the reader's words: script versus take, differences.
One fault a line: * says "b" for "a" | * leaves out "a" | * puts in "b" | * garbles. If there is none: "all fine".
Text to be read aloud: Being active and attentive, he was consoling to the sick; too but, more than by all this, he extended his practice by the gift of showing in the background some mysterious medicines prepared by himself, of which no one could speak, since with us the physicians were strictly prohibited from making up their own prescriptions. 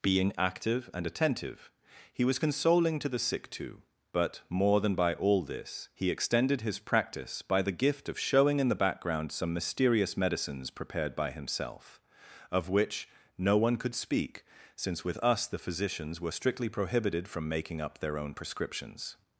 all fine